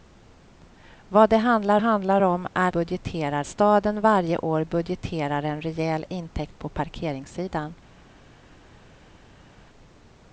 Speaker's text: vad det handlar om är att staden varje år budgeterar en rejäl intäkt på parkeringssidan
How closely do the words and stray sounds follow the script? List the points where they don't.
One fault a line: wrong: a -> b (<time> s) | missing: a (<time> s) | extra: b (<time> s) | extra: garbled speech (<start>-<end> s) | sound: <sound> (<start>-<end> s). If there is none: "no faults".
extra: handlar (1.8 s)
wrong: att -> budgeterar (2.7 s)